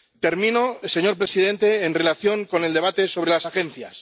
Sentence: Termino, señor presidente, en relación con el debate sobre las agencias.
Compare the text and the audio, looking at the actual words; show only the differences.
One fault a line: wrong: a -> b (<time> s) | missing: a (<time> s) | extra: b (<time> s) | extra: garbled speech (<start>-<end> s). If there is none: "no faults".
no faults